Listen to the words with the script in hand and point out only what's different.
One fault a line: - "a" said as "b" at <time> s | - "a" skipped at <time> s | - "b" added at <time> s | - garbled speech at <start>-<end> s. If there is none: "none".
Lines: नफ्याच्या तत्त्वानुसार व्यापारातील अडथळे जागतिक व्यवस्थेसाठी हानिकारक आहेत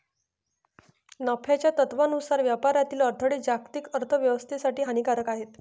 - "अर्थ" added at 3.9 s